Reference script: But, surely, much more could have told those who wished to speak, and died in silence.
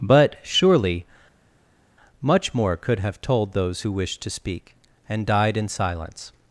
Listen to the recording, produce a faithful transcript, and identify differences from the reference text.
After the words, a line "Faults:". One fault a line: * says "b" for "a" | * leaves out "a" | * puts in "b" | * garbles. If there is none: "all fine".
But, surely, much more could have told those who wished to speak, and died in silence.
Faults:
all fine